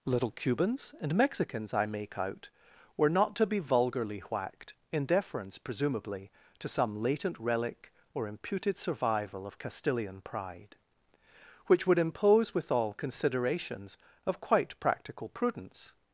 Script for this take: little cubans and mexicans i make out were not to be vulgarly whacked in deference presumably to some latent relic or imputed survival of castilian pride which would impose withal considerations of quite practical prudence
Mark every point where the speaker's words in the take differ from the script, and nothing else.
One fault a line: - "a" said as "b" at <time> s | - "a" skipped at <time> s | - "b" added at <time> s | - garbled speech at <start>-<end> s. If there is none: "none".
none